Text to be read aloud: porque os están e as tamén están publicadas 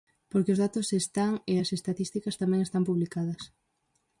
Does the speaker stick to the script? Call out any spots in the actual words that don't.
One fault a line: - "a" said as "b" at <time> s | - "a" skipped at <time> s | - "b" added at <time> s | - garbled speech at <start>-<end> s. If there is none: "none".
- "datos" added at 0.6 s
- "estatísticas" added at 1.8 s